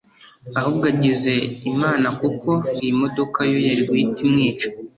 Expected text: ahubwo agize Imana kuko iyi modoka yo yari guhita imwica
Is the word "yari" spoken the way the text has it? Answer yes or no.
yes